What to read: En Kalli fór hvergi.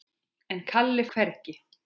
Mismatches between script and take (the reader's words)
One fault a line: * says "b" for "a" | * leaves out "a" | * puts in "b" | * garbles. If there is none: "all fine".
* leaves out "fór"